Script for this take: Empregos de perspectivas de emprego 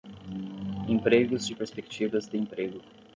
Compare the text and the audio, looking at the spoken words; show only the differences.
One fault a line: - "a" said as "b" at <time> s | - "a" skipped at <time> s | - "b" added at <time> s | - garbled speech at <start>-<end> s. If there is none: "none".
none